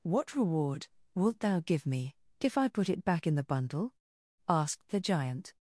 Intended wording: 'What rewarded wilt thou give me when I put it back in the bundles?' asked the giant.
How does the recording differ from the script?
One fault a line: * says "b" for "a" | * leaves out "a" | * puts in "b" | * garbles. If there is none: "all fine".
* says "reward" for "rewarded"
* says "if" for "when"
* says "bundle" for "bundles"